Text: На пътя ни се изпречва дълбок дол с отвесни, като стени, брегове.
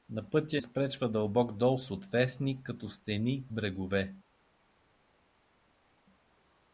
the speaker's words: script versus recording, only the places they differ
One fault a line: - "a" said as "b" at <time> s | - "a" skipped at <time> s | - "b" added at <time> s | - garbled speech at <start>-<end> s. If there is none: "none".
- "ни се" skipped at 0.6 s